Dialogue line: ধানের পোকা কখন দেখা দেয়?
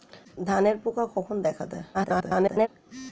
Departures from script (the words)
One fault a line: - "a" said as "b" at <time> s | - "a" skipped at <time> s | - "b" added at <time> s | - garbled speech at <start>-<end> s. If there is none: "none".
- garbled speech at 1.9-2.7 s